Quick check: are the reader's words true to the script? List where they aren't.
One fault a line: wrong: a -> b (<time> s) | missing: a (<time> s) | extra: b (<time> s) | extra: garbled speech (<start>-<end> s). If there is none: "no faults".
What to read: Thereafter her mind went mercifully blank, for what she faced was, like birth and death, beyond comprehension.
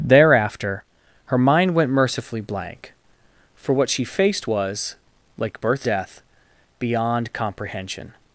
missing: and (5.8 s)